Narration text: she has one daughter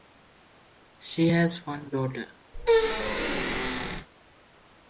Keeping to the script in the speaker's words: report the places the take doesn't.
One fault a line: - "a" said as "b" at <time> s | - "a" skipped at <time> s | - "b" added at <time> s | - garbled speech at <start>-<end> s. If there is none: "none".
none